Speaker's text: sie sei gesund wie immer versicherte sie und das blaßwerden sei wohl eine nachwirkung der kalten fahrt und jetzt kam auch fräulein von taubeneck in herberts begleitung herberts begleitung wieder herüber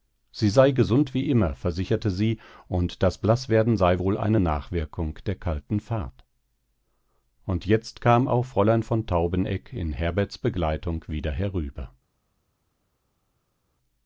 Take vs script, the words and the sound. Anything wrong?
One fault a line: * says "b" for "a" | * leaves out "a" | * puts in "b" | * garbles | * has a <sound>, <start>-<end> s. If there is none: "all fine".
* leaves out "herberts begleitung"